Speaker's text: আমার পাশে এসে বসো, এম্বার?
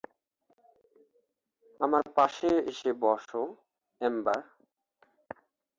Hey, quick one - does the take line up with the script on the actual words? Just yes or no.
yes